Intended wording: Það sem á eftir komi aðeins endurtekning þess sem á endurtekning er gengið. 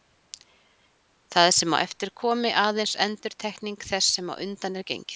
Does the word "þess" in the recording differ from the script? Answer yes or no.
no